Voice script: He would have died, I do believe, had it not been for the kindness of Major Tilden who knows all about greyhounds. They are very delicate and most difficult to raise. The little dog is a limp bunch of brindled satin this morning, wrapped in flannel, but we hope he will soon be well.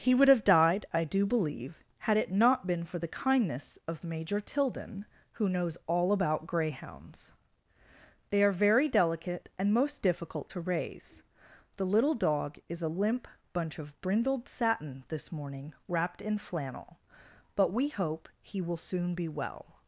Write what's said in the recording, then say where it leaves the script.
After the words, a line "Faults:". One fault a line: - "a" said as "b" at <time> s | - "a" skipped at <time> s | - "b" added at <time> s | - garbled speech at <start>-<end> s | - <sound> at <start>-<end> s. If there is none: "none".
He would have died, I do believe, had it not been for the kindness of Major Tilden who knows all about greyhounds. They are very delicate and most difficult to raise. The little dog is a limp bunch of brindled satin this morning, wrapped in flannel, but we hope he will soon be well.
Faults:
none